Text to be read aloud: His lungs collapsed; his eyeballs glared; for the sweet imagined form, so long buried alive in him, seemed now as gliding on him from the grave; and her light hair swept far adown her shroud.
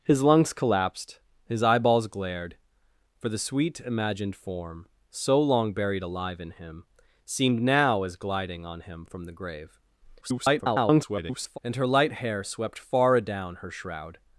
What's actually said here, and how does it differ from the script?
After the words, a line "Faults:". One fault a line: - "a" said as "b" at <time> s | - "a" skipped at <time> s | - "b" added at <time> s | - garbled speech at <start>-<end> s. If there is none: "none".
His lungs collapsed; his eyeballs glared; for the sweet imagined form, so long buried alive in him, seemed now as gliding on him from the grave; [garbled] and her light hair swept far adown her shroud.
Faults:
- garbled speech at 10.2-11.6 s